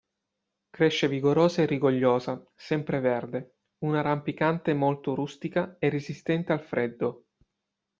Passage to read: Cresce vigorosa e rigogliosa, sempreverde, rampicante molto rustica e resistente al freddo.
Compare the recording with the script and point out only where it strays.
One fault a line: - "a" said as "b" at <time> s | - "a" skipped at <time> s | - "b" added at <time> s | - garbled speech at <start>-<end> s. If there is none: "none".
- "una" added at 3.9 s